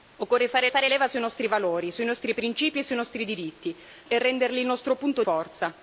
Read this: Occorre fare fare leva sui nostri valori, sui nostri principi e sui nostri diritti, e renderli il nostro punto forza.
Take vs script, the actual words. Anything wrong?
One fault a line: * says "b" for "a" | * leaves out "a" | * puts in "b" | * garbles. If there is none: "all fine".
all fine